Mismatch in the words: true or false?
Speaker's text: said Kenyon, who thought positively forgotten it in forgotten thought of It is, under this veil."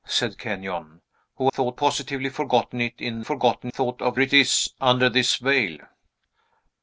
false